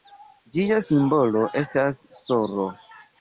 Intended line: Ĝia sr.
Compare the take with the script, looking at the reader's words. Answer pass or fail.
fail